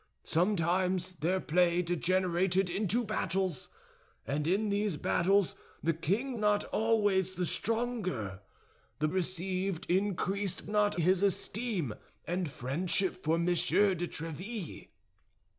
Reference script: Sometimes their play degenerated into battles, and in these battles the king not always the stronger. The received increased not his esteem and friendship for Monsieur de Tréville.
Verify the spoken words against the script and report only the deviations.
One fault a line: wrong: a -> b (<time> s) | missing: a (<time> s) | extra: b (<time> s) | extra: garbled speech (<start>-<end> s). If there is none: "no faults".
no faults